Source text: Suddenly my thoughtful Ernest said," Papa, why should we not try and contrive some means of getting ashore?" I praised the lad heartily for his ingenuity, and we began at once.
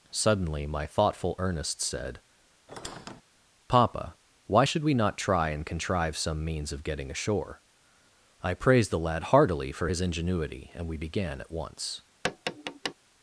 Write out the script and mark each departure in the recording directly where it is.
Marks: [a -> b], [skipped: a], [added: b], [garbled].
Suddenly my thoughtful Ernest said," Papa, why should we not try and contrive some means of getting ashore?" I praised the lad heartily for his ingenuity, and we began at once.